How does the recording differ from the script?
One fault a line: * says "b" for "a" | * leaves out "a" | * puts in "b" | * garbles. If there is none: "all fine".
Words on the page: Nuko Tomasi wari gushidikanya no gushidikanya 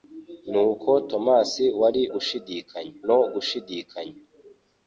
all fine